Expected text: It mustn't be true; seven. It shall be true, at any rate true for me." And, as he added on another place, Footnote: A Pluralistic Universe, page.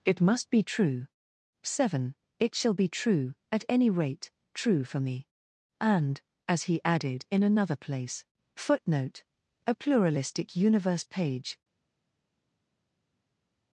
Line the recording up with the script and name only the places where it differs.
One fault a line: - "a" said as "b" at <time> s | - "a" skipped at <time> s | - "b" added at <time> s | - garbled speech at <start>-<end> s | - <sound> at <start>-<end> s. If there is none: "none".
- "mustn't" said as "must" at 0.2 s
- "on" said as "in" at 7.3 s